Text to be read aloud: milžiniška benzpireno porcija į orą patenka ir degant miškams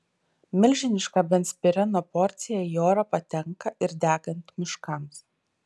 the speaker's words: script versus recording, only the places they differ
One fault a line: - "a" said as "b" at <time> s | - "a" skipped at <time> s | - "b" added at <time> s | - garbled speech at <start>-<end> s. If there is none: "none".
none